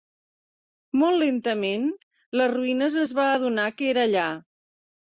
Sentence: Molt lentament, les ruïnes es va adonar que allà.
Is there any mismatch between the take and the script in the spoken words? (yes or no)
yes